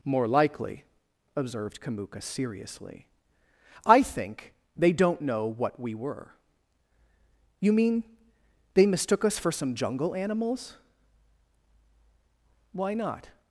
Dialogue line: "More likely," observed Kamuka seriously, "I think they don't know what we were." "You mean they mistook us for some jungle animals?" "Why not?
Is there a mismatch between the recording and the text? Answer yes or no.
no